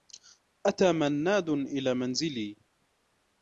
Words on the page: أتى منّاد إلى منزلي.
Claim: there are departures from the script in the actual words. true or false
false